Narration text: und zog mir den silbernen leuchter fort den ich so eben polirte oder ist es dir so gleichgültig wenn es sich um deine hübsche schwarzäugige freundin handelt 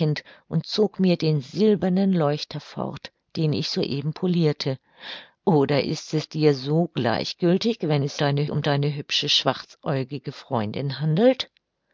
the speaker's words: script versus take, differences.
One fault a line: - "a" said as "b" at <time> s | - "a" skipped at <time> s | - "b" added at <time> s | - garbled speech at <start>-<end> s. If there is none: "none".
- "sich" said as "deine" at 8.2 s